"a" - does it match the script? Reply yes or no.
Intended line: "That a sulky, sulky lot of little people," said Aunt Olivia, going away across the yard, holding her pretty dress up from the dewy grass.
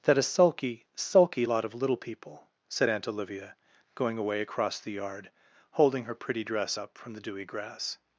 yes